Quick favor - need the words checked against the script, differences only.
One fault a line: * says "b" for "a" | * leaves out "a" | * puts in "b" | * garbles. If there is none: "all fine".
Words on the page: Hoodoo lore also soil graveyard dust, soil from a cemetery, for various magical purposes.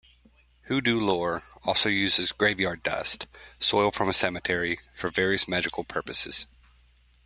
* says "uses" for "soil"